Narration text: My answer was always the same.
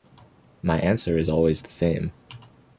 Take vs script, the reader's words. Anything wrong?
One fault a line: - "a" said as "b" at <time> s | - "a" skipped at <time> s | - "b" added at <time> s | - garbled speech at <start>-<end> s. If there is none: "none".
- "was" said as "is" at 1.1 s